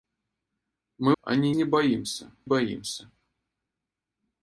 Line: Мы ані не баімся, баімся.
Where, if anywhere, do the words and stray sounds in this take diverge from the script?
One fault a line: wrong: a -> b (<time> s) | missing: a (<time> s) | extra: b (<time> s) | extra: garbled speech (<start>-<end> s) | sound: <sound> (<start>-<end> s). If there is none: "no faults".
no faults